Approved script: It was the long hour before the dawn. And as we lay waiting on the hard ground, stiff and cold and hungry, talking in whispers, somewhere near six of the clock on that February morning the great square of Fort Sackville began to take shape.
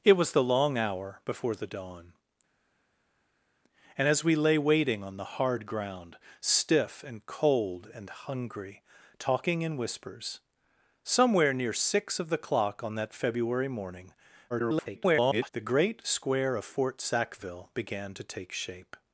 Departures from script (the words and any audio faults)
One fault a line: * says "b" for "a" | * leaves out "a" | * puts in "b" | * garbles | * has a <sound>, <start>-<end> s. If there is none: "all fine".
* garbles